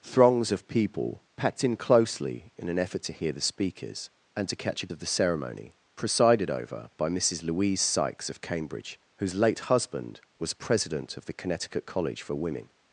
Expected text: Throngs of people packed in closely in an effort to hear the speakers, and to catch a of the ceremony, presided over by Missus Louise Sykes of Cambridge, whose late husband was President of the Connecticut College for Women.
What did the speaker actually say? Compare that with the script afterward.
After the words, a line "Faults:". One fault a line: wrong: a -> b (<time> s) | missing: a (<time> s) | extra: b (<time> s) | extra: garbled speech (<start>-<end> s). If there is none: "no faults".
Throngs of people packed in closely in an effort to hear the speakers, and to catch a of the ceremony, presided over by Missus Louise Sykes of Cambridge, whose late husband was President of the Connecticut College for Women.
Faults:
no faults